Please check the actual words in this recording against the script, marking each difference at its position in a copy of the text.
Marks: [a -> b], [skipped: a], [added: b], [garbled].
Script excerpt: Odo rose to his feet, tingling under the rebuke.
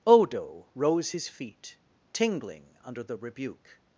Odo rose [skipped: to] his feet, tingling under the rebuke.